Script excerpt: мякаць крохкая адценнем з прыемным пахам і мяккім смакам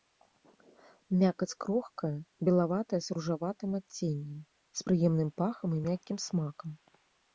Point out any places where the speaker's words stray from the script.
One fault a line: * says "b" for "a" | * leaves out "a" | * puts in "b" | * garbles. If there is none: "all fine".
* puts in "белаватая з ружаватым"